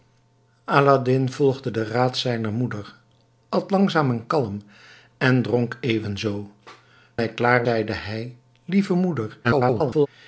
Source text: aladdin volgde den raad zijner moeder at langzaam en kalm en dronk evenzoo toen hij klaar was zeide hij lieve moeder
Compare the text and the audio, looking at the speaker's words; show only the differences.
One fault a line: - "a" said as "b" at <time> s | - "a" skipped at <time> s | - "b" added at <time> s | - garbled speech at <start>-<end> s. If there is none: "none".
- "toen" skipped at 6.5 s
- "was" skipped at 7.7 s
- garbled speech at 9.4-10.1 s